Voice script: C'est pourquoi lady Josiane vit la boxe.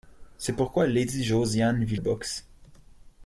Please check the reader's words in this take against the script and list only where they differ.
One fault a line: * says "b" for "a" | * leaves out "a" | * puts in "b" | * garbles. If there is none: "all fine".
* leaves out "la"